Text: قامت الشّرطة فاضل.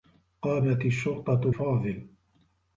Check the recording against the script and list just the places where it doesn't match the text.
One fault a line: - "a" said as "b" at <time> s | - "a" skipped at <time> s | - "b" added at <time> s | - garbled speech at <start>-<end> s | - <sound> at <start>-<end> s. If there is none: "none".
none